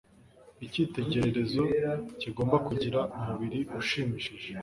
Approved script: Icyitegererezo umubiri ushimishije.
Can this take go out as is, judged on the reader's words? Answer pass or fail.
fail